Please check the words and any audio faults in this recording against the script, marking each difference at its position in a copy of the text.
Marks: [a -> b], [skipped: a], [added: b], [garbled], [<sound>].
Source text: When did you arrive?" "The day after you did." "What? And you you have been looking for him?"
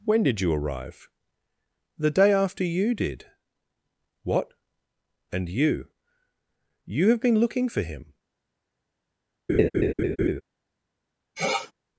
When did you arrive?" "The day after you did." "What? And you you have been looking for him?" [laugh] [sniff]